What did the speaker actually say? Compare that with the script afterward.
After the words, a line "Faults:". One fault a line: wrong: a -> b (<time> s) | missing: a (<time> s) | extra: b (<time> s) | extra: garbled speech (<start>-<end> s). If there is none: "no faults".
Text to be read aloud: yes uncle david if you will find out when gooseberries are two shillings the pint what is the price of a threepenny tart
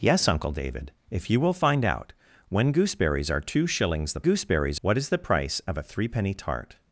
yes uncle david if you will find out when gooseberries are two shillings the gooseberries what is the price of a threepenny tart
Faults:
wrong: pint -> gooseberries (4.2 s)